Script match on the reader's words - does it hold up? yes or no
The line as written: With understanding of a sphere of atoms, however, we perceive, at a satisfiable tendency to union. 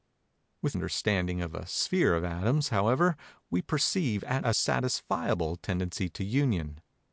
yes